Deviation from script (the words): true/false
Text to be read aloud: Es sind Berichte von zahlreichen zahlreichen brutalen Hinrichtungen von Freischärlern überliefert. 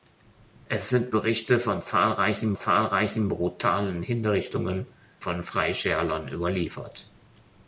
false